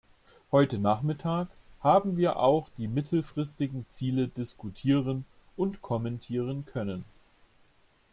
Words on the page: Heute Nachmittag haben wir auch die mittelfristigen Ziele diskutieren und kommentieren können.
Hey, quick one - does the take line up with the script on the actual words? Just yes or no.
yes